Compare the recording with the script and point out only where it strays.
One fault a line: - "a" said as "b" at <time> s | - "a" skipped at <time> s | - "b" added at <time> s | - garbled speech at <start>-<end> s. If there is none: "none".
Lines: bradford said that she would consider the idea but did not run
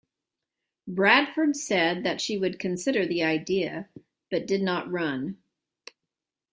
none